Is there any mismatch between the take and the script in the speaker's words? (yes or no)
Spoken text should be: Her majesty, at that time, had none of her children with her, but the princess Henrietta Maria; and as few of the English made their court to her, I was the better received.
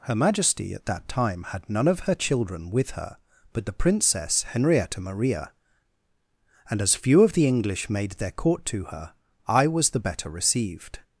no